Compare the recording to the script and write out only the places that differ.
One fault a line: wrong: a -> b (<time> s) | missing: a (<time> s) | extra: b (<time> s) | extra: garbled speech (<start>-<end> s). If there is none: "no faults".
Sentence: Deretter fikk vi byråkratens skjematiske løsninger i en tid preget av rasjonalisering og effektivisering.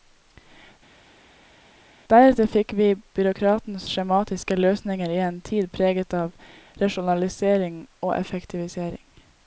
no faults